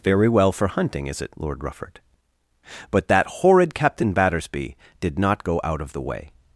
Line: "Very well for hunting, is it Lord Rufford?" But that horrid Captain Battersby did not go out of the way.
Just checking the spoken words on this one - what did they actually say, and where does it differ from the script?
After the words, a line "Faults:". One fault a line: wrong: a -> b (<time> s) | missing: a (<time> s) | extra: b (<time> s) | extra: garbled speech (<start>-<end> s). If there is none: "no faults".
"Very well for hunting, is it Lord Rufford?" But that horrid Captain Battersby did not go out of the way.
Faults:
no faults